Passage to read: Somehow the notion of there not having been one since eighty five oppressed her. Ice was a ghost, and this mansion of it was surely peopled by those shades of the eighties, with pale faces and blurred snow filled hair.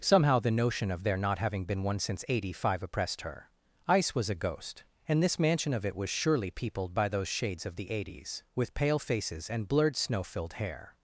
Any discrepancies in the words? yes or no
no